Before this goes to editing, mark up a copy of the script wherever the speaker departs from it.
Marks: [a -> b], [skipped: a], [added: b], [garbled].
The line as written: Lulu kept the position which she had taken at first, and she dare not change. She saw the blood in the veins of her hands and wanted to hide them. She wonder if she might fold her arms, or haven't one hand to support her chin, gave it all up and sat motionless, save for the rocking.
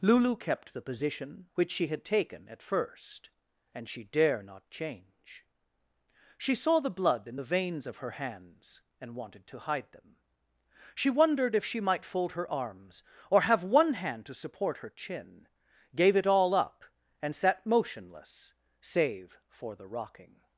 Lulu kept the position which she had taken at first, and she dare not change. She saw the blood in the veins of her hands and wanted to hide them. She [wonder -> wondered] if she might fold her arms, or [haven't -> have] one hand to support her chin, gave it all up and sat motionless, save for the rocking.